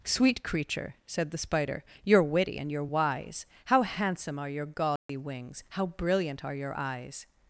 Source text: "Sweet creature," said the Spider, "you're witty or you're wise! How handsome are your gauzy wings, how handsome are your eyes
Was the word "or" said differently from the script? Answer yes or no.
yes